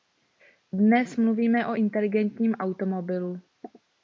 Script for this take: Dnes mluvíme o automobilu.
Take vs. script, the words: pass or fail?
fail